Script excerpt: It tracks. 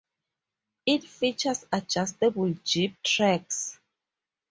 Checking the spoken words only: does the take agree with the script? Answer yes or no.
no